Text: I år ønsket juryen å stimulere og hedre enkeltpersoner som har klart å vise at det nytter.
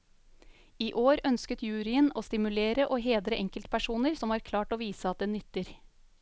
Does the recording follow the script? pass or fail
pass